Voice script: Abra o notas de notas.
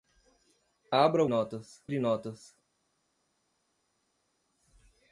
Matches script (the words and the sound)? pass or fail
pass